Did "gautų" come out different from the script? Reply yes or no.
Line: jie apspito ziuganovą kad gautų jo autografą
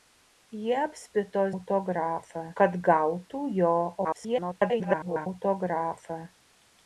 no